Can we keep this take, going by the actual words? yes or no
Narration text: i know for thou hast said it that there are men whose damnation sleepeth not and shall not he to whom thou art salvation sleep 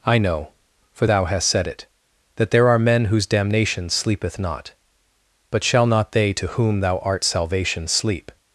no